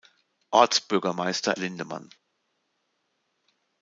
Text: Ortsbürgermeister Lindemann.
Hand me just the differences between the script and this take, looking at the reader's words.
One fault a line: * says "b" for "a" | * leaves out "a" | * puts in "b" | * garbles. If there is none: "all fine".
all fine